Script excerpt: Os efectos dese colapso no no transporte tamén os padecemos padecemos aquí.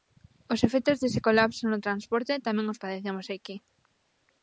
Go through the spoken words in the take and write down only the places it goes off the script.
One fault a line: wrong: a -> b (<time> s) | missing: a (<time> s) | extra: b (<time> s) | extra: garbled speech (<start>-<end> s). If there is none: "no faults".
missing: no (1.8 s)
missing: padecemos (3.3 s)